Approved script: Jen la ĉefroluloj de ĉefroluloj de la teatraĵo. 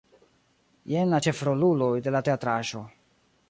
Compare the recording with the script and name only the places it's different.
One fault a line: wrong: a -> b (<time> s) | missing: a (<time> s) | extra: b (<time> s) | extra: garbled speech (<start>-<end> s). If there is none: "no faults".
missing: ĉefroluloj de (2.2 s)